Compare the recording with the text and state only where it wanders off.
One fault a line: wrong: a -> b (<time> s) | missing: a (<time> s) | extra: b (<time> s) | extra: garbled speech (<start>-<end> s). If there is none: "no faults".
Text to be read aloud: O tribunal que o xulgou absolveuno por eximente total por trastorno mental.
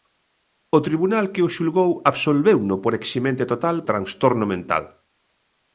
missing: por (3.8 s)